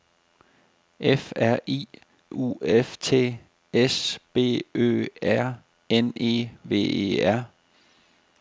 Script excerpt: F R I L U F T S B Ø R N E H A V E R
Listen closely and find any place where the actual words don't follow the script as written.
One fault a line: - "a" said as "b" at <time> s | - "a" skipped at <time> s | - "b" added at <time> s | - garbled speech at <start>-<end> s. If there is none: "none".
- "L" skipped at 1.9 s
- "H A" skipped at 6.5 s